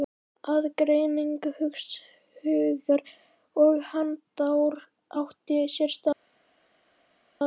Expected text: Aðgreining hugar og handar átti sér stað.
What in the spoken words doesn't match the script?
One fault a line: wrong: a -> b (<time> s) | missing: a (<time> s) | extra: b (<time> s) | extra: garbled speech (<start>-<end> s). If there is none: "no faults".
no faults